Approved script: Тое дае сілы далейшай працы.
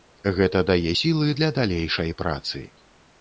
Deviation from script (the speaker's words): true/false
true